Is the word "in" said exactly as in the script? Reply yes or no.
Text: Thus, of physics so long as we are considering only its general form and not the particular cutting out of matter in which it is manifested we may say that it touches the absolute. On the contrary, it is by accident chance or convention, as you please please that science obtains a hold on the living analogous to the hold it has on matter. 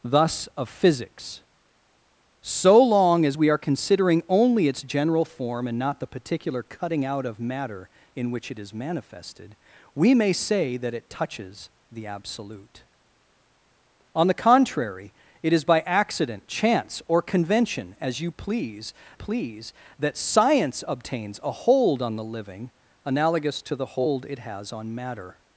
yes